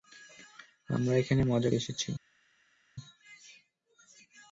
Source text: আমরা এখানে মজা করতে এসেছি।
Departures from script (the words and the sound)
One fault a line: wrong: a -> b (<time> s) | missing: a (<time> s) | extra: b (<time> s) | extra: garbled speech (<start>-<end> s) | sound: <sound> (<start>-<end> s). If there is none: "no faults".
missing: করতে (1.7 s)